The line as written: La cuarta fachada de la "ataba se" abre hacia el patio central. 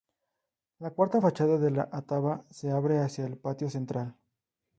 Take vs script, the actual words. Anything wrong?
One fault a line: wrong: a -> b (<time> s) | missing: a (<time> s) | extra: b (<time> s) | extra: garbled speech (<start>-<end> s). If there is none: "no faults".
no faults